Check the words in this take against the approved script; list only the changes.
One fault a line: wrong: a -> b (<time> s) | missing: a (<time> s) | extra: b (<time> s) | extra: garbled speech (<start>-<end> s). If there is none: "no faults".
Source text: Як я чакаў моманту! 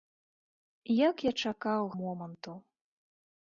no faults